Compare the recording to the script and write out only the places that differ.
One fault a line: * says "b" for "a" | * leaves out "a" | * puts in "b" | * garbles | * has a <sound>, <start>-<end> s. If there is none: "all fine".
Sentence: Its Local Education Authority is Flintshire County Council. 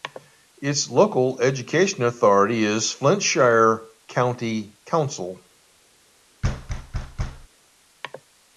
* has a thud, 6.4-7.5 s